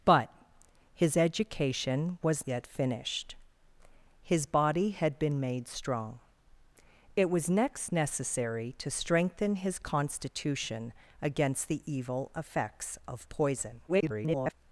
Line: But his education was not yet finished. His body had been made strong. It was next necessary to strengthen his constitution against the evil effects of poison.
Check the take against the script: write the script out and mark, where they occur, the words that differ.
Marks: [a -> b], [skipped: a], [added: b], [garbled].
But his education was [skipped: not] yet finished. His body had been made strong. It was next necessary to strengthen his constitution against the evil effects of poison. [garbled]